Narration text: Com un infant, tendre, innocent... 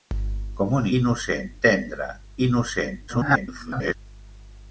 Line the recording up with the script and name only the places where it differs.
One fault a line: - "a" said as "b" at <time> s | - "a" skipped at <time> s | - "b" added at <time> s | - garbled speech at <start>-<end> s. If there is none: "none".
- "infant" said as "innocent" at 1.0 s
- garbled speech at 3.1-4.0 s